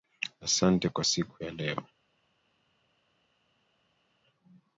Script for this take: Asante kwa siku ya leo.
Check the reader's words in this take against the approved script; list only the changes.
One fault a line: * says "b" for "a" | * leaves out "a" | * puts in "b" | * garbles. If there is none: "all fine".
all fine